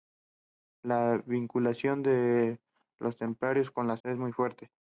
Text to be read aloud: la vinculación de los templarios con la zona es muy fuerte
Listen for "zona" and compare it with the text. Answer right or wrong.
wrong